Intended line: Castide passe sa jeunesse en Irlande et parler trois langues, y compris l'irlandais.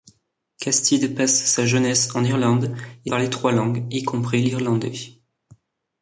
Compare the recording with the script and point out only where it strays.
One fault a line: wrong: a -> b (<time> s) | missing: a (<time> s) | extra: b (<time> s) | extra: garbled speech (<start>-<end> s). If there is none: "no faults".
no faults